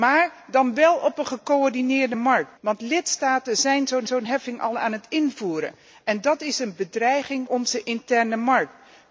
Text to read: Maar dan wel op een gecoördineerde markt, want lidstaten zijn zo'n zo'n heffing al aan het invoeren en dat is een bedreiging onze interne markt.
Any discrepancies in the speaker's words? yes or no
no